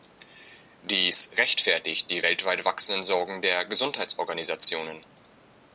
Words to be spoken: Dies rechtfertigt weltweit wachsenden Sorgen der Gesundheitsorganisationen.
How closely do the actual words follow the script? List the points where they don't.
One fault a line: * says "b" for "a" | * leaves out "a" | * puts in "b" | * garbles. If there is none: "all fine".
* puts in "die"